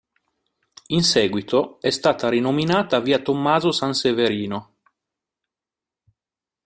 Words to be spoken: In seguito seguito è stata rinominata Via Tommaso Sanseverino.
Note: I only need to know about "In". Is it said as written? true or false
true